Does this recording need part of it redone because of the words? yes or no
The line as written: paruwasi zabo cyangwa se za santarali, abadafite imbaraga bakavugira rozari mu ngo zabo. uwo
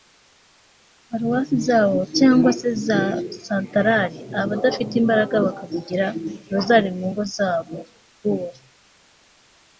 no